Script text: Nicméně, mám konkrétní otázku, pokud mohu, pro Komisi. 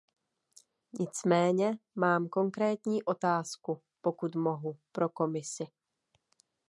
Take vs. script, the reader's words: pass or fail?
pass